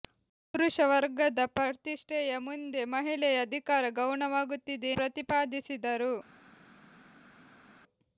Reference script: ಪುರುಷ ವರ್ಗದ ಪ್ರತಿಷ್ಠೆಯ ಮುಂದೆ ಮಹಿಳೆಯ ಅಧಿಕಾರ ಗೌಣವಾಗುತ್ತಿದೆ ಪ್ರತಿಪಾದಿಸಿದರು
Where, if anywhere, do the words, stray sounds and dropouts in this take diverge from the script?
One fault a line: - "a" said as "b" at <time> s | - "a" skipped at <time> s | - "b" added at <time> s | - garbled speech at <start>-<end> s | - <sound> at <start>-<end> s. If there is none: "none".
none